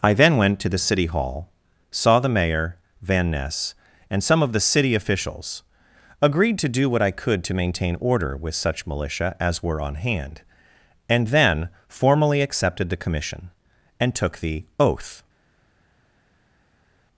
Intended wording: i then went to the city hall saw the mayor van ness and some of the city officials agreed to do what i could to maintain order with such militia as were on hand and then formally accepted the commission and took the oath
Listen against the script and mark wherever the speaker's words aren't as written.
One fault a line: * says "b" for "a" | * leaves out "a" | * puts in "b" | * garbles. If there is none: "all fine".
all fine